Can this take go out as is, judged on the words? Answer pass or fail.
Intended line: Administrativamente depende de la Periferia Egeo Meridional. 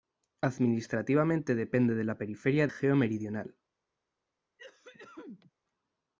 pass